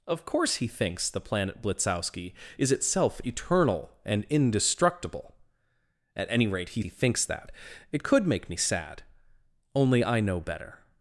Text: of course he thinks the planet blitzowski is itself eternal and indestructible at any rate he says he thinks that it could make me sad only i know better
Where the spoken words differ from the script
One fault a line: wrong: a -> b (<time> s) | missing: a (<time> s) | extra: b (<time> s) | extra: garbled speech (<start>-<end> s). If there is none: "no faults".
missing: says (6.8 s)